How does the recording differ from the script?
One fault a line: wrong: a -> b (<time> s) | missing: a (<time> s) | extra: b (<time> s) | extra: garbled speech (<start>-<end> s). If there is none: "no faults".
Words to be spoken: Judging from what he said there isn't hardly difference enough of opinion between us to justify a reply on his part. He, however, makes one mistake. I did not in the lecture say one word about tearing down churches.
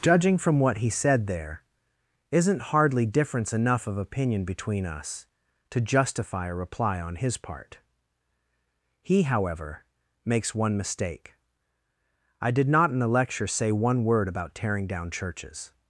no faults